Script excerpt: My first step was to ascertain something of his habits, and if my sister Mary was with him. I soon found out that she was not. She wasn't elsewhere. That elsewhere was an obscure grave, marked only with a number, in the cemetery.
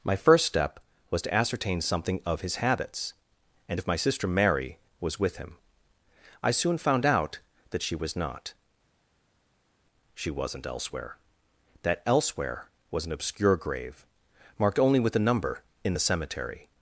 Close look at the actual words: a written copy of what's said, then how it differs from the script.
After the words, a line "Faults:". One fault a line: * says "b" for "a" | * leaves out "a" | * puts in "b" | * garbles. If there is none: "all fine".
My first step was to ascertain something of his habits, and if my sister Mary was with him. I soon found out that she was not. She wasn't elsewhere. That elsewhere was an obscure grave, marked only with a number, in the cemetery.
Faults:
all fine